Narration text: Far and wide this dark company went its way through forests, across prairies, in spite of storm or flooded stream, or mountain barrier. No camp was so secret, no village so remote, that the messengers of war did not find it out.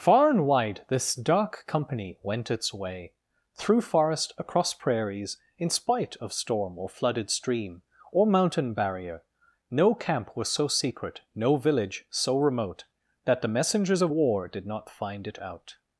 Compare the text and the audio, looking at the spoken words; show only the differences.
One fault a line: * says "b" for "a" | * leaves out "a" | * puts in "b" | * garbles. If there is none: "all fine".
* says "forest" for "forests"